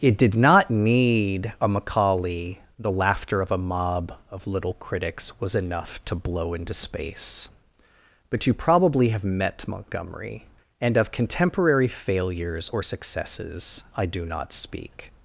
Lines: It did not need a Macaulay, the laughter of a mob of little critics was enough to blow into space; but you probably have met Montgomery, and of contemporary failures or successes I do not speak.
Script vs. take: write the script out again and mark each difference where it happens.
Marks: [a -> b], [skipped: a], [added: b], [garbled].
It did not need a Macaulay, the laughter of a mob of little critics was enough to blow into space; but you probably have met Montgomery, and of contemporary failures or successes I do not speak.